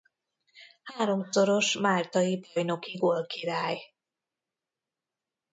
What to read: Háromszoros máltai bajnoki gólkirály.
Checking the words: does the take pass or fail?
pass